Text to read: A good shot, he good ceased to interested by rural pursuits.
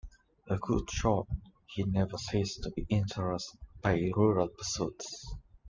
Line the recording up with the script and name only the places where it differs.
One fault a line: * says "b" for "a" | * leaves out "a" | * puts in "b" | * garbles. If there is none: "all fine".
* says "never" for "good"
* puts in "be"